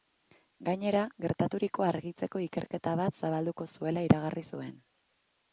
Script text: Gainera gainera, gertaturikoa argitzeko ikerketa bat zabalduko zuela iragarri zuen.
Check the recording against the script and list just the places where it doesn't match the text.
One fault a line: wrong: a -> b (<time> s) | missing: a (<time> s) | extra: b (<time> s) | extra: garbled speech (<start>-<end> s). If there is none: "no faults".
missing: gainera (1.0 s)